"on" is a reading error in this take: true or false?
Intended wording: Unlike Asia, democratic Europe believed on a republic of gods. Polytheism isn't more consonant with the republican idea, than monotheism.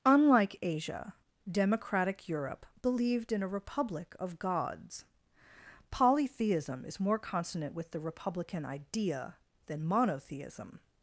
true